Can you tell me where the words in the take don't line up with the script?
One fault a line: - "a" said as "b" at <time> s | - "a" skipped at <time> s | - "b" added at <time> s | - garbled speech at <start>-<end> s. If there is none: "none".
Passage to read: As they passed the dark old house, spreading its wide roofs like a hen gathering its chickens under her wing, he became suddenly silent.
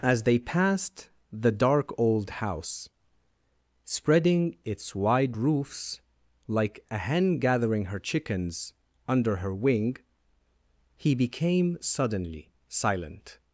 - "its" said as "her" at 7.9 s